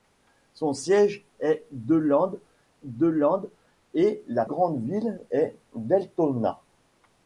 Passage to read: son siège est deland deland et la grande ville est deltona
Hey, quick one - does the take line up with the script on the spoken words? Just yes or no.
yes